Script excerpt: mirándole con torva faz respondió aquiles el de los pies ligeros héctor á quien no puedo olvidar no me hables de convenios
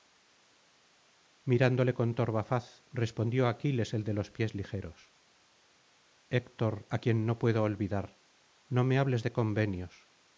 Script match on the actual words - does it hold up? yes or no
yes